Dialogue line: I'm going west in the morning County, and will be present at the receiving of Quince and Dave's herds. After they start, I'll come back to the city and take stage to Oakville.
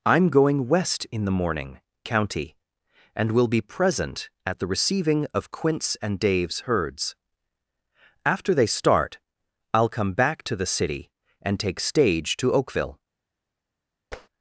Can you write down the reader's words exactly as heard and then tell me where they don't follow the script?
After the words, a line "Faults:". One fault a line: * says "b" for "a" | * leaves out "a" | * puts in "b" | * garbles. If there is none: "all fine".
I'm going west in the morning County, and will be present at the receiving of Quince and Dave's herds. After they start, I'll come back to the city and take stage to Oakville.
Faults:
all fine